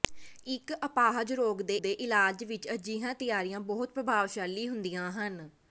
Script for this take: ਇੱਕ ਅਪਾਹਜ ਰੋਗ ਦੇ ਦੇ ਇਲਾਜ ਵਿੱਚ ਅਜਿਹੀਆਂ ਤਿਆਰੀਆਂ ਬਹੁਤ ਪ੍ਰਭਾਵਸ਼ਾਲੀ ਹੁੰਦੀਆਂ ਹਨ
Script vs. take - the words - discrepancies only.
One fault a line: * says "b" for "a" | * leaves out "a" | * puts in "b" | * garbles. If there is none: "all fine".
all fine